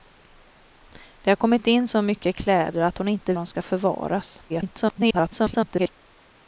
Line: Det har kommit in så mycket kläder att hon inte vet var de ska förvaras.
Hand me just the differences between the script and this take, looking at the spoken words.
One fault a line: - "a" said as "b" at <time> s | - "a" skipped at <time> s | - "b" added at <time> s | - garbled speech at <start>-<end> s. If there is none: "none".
- "vet var" skipped at 3.3 s
- garbled speech at 4.5-5.9 s